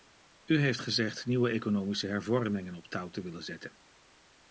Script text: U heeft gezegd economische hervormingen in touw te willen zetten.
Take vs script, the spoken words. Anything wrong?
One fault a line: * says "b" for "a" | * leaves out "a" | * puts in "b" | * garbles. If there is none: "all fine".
* puts in "nieuwe"
* says "op" for "in"